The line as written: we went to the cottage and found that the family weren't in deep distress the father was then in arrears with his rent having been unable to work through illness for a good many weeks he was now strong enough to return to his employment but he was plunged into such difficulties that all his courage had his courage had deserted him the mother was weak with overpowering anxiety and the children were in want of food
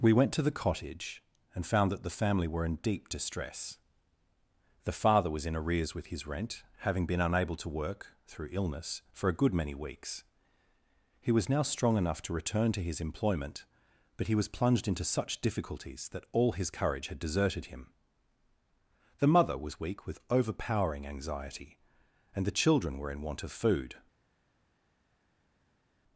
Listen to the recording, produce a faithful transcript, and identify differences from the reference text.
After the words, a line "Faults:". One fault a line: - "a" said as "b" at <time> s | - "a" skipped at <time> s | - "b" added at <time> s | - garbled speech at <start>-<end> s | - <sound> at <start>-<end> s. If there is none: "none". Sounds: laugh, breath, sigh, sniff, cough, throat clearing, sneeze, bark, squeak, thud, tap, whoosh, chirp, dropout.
we went to the cottage and found that the family were in deep distress the father was in arrears with his rent having been unable to work through illness for a good many weeks he was now strong enough to return to his employment but he was plunged into such difficulties that all his courage had deserted him the mother was weak with overpowering anxiety and the children were in want of food
Faults:
- "weren't" said as "were" at 2.5 s
- "then" skipped at 5.5 s
- "his courage had" skipped at 17.2 s